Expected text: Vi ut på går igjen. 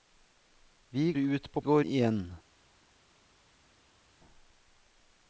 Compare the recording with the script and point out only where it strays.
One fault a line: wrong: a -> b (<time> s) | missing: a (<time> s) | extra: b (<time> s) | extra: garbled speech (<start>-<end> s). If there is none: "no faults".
no faults